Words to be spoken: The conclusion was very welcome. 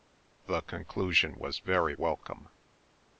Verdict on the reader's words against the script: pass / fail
pass